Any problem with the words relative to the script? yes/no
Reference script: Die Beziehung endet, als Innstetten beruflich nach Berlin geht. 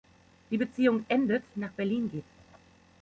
yes